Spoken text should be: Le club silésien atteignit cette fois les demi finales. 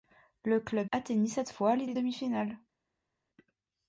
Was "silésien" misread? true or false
true